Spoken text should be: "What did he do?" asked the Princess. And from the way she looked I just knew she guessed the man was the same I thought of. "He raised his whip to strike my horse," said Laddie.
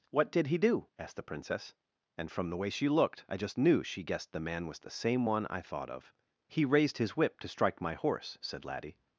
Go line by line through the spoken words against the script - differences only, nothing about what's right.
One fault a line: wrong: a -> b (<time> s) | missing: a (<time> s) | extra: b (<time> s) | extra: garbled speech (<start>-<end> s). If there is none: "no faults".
extra: one (5.2 s)